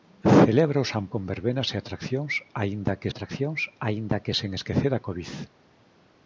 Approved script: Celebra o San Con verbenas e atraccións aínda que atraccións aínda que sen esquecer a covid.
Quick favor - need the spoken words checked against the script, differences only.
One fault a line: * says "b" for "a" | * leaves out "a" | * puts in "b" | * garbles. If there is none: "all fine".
all fine